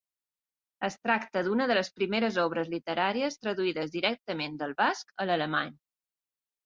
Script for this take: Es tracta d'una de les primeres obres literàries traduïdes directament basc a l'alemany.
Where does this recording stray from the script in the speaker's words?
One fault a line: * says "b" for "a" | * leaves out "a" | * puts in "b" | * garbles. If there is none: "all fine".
* puts in "del"